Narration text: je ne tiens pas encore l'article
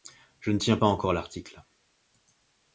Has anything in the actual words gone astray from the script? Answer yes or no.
no